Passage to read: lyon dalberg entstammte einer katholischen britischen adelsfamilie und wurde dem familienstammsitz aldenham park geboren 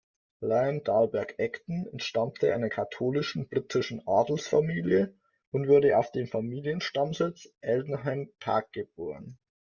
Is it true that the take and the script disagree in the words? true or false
true